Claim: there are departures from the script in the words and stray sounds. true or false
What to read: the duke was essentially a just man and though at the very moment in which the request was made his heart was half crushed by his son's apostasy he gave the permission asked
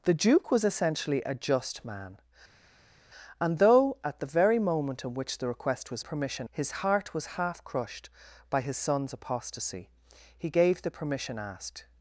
true